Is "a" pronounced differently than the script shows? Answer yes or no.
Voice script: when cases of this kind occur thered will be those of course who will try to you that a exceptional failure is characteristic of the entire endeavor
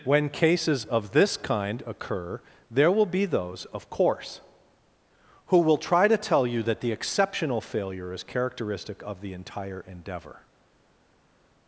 yes